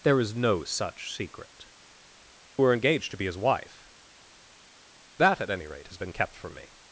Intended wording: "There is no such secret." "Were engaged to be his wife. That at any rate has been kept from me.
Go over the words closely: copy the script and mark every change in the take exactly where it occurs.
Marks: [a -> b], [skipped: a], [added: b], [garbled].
"There is no such secret." "Were engaged to be his wife. That at any rate has been kept from me.